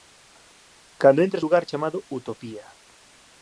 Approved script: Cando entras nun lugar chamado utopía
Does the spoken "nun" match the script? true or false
false